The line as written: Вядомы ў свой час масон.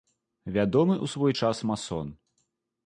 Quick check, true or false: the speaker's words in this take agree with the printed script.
true